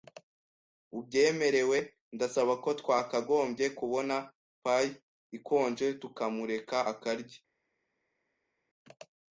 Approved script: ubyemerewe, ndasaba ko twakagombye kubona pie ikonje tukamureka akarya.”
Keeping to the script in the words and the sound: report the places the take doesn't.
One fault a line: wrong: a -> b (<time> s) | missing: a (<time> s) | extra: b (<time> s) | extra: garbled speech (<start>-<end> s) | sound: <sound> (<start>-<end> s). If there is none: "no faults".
no faults